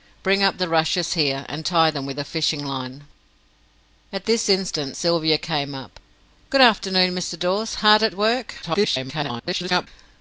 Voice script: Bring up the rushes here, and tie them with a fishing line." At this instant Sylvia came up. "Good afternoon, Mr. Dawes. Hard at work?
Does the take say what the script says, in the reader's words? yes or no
no